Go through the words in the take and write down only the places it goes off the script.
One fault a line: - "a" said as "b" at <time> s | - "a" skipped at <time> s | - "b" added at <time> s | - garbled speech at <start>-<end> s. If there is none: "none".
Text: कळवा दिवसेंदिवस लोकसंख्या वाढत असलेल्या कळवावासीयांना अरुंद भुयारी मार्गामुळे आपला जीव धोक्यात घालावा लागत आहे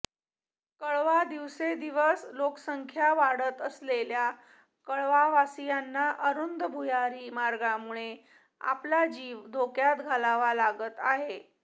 none